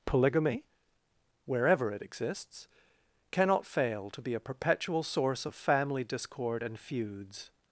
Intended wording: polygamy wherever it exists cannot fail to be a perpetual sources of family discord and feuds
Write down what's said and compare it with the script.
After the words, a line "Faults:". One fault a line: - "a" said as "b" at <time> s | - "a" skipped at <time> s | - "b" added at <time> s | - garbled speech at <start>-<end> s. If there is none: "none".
polygamy wherever it exists cannot fail to be a perpetual source of family discord and feuds
Faults:
- "sources" said as "source" at 5.0 s